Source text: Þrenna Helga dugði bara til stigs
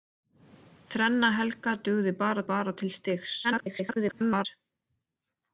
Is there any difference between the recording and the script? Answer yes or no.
yes